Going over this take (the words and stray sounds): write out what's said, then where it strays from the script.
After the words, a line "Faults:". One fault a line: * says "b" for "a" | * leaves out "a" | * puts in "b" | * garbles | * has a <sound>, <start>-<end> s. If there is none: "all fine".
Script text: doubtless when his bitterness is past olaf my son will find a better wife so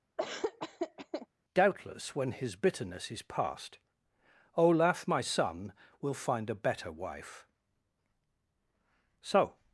doubtless when his bitterness is past olaf my son will find a better wife so
Faults:
* has a laugh, 0.2-1.3 s